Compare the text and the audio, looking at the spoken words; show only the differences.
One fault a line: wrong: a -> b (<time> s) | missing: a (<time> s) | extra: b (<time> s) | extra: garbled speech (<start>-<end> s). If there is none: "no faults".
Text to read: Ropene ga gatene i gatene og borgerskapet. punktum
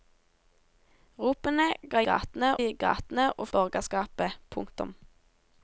no faults